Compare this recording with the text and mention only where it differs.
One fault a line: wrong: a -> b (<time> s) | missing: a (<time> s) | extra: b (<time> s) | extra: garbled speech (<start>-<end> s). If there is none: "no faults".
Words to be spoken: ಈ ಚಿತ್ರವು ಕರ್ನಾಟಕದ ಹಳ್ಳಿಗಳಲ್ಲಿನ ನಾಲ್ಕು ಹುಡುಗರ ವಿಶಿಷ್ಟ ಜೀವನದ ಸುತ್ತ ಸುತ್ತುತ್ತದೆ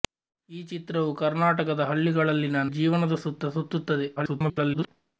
missing: ನಾಲ್ಕು ಹುಡುಗರ ವಿಶಿಷ್ಟ (2.6 s)
extra: garbled speech (4.2-4.9 s)